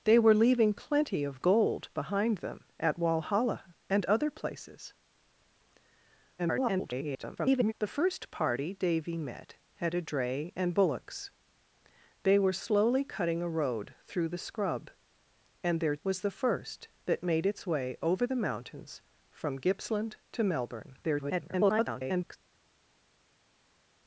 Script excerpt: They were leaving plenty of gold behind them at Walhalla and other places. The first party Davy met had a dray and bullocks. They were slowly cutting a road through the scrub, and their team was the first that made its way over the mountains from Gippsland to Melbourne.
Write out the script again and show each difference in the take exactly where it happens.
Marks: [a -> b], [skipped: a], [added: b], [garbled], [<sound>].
They were leaving plenty of gold behind them at Walhalla and other places. [garbled] The first party Davy met had a dray and bullocks. They were slowly cutting a road through the scrub, and their [skipped: team] was the first that made its way over the mountains from Gippsland to Melbourne. [garbled]